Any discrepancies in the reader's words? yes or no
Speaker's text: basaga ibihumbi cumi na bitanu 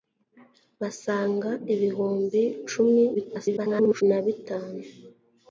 yes